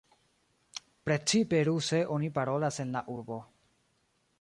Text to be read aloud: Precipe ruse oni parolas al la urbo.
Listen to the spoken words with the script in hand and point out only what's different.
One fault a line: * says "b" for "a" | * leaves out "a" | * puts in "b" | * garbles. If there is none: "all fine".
* says "en" for "al"